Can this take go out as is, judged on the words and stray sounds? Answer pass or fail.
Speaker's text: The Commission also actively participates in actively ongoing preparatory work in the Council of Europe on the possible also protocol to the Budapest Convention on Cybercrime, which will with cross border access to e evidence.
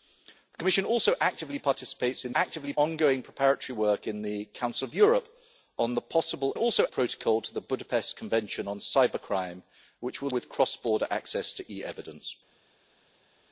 pass